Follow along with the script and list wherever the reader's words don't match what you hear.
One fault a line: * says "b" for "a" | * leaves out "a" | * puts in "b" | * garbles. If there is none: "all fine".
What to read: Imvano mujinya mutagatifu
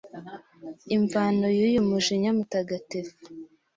* puts in "y'uyu"